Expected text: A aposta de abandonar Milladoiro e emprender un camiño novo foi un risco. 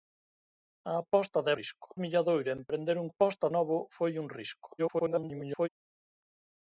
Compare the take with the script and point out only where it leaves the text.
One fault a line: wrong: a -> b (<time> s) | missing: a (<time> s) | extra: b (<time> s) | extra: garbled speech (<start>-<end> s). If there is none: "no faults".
wrong: abandonar -> risco (1.6 s)
wrong: camiño -> aposta (3.1 s)
extra: garbled speech (4.8-5.7 s)